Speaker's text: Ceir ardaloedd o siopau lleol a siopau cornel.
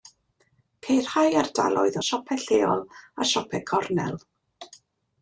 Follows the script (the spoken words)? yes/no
no